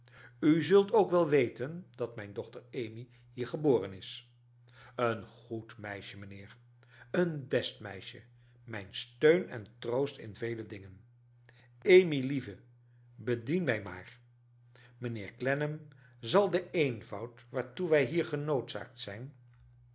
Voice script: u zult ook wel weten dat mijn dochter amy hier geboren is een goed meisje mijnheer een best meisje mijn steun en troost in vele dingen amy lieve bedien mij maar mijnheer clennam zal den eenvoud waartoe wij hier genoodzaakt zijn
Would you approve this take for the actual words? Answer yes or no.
yes